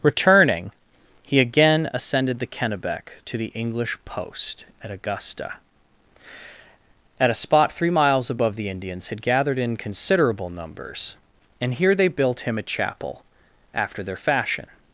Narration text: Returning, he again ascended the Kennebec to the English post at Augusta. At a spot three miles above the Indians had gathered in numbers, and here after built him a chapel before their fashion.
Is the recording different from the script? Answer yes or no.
yes